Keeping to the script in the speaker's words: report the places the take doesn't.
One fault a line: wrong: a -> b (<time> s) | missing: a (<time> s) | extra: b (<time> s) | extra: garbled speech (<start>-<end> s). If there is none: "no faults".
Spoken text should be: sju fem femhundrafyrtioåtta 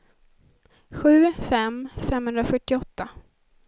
no faults